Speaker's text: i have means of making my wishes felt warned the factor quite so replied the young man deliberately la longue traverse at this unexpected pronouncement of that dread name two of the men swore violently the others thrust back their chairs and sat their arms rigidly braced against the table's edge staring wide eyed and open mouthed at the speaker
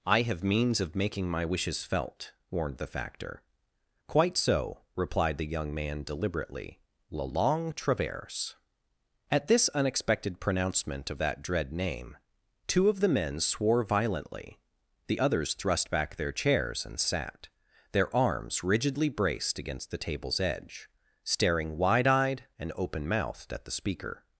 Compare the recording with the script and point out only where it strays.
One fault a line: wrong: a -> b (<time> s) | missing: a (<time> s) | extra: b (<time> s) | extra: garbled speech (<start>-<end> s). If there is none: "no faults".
no faults